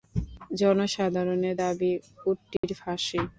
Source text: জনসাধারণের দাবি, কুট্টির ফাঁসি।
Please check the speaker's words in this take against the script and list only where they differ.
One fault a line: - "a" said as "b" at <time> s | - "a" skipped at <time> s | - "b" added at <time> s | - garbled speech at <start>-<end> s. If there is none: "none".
none